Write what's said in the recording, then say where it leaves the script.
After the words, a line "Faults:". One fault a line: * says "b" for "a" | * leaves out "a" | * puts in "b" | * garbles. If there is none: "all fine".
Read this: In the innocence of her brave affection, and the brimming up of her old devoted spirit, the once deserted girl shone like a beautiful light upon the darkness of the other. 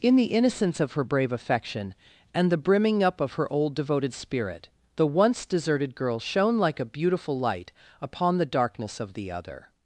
In the innocence of her brave affection, and the brimming up of her old devoted spirit, the once deserted girl shone like a beautiful light upon the darkness of the other.
Faults:
all fine